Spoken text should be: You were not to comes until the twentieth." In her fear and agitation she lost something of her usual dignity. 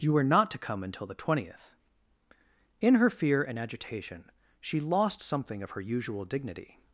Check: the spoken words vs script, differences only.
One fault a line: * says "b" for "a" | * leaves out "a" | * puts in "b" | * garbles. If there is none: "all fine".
* says "come" for "comes"